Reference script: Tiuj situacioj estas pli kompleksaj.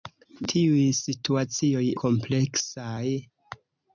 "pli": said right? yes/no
no